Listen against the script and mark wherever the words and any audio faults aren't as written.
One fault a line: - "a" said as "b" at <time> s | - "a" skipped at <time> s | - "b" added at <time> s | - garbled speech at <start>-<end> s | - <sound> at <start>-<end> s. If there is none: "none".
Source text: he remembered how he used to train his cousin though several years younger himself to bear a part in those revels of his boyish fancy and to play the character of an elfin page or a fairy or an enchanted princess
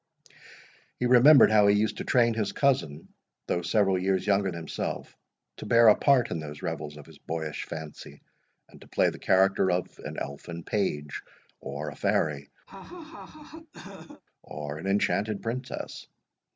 - laugh at 12.7-14.2 s